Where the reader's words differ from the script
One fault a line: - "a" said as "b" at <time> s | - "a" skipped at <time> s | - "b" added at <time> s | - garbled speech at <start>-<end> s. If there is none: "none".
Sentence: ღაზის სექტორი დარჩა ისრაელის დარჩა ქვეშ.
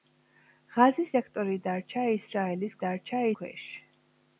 none